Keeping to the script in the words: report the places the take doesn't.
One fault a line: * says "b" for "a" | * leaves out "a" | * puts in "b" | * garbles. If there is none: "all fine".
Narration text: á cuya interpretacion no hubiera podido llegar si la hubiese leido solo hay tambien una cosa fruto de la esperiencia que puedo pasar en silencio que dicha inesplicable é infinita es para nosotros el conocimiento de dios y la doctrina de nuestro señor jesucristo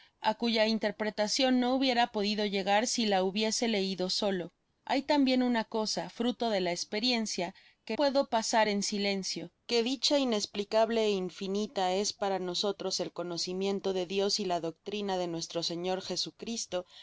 all fine